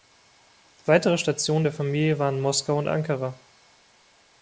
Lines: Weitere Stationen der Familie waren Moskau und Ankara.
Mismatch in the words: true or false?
false